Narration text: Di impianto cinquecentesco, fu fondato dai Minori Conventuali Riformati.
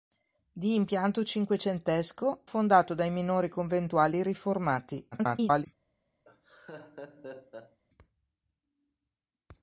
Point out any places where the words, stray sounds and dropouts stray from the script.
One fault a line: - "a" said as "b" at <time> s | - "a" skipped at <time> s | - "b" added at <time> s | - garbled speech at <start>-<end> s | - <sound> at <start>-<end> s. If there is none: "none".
- "fu" skipped at 2.5 s
- garbled speech at 5.1-5.7 s
- laugh at 6.2-7.8 s